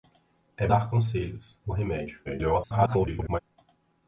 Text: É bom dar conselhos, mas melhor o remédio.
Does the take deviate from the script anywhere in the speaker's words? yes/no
yes